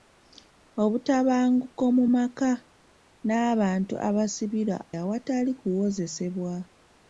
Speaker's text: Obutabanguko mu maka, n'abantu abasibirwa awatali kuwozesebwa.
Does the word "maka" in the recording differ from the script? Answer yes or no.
no